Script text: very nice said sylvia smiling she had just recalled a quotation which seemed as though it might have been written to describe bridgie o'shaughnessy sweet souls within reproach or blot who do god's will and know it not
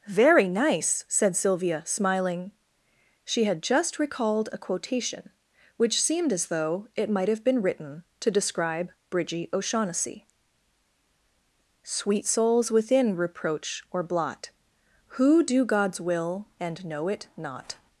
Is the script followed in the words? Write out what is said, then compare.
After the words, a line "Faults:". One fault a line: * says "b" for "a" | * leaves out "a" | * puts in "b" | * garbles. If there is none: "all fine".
very nice said sylvia smiling she had just recalled a quotation which seemed as though it might have been written to describe bridgie o'shaughnessy sweet souls within reproach or blot who do god's will and know it not
Faults:
all fine